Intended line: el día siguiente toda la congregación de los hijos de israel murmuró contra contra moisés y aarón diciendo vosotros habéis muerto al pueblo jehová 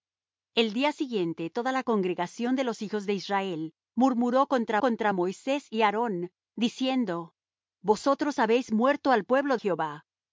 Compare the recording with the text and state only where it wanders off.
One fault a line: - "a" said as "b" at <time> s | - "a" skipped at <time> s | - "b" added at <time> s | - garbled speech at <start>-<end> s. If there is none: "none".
none